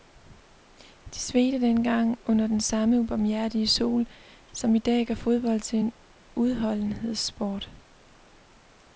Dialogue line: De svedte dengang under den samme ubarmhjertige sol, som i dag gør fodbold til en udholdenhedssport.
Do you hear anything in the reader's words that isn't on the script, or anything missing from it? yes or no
no